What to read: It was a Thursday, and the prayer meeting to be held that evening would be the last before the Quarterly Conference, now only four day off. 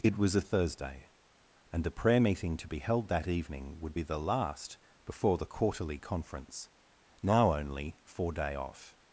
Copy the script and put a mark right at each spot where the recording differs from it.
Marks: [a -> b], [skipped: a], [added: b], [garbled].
It was a Thursday, and the prayer meeting to be held that evening would be the last before the Quarterly Conference, now only four day off.